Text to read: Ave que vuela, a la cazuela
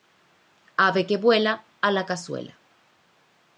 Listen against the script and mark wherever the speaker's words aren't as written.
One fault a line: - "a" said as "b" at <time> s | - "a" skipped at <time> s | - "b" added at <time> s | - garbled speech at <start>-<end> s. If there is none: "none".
none